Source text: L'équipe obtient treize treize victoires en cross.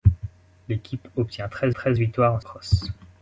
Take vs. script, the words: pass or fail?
pass